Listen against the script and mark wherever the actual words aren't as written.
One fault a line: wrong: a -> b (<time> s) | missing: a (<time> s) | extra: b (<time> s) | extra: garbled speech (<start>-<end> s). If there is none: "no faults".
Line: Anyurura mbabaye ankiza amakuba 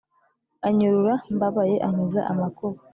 no faults